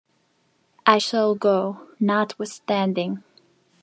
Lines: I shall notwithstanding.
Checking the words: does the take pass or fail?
fail